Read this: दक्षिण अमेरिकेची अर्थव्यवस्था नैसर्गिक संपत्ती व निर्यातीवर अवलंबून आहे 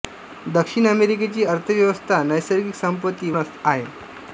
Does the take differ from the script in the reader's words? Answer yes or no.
yes